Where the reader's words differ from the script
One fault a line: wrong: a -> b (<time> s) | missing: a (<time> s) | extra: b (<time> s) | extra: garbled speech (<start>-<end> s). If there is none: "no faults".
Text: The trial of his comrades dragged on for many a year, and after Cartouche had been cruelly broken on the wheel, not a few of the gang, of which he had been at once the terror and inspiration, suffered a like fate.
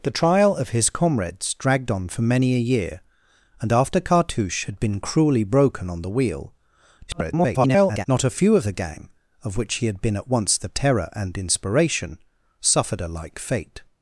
extra: garbled speech (7.1-8.1 s)